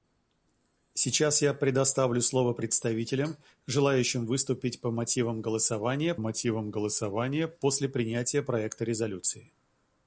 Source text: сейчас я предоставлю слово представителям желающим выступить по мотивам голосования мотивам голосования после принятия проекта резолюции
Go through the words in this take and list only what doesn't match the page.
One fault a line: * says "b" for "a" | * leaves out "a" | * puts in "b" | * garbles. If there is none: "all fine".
all fine